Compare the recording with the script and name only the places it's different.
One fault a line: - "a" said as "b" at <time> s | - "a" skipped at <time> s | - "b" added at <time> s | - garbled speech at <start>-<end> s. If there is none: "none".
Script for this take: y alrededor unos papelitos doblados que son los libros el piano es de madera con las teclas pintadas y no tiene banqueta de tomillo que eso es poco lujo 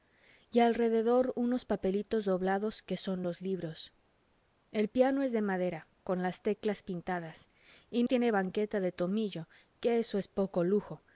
- "no" skipped at 8.0 s